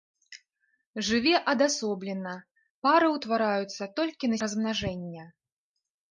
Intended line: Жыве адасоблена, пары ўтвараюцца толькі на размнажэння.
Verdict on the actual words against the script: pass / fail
pass